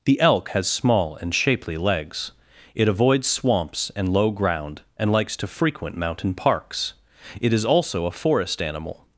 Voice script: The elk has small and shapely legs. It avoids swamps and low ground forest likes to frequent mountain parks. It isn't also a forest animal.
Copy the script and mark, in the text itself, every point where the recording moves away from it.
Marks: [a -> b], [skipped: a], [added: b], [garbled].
The elk has small and shapely legs. It avoids swamps and low ground [forest -> and] likes to frequent mountain parks. It [isn't -> is] also a forest animal.